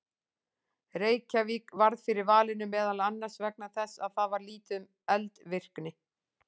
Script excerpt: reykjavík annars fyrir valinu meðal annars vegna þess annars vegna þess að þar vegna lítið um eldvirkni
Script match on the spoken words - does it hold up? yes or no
no